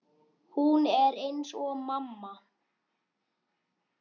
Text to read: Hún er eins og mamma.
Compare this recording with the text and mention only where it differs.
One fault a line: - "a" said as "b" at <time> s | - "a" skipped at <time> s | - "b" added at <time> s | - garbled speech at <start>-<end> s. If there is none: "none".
none